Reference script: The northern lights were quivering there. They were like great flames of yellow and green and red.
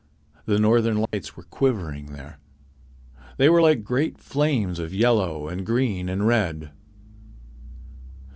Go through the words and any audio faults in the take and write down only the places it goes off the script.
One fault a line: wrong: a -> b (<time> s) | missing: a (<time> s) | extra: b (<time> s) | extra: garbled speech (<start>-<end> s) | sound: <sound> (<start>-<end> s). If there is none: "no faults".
sound: dropout (1.1-1.1 s)